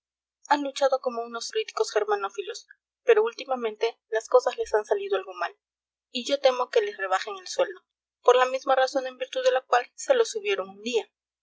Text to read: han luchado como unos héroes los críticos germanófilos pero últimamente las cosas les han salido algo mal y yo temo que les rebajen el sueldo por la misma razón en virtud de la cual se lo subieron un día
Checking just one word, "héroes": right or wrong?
wrong